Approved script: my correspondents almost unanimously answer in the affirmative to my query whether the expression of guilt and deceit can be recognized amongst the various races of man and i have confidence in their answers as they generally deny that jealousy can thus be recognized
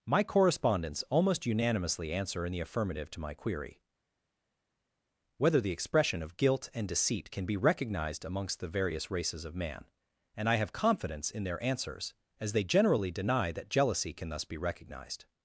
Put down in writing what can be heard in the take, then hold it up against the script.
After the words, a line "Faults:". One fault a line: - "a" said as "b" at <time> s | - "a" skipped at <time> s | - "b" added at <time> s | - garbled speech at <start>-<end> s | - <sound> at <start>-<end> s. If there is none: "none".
my correspondents almost unanimously answer in the affirmative to my query whether the expression of guilt and deceit can be recognized amongst the various races of man and i have confidence in their answers as they generally deny that jealousy can thus be recognized
Faults:
none